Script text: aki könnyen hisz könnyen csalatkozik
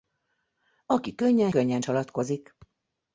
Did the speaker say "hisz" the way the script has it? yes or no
no